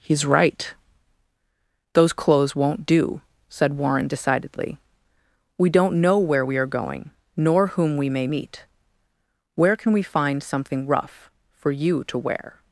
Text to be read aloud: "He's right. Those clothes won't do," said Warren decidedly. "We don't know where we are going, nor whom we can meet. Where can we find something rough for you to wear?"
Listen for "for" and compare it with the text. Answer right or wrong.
right